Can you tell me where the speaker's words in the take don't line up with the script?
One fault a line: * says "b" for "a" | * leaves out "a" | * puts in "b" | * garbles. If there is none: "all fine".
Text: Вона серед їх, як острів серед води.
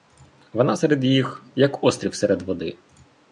all fine